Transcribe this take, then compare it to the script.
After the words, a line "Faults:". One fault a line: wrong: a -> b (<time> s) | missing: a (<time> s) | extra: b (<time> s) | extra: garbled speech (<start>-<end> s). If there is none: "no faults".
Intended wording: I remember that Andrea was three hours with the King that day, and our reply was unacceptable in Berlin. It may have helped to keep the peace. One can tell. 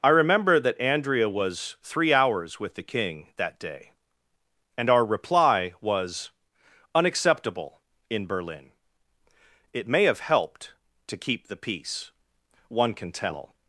I remember that Andrea was three hours with the King that day, and our reply was unacceptable in Berlin. It may have helped to keep the peace. One can tell.
Faults:
no faults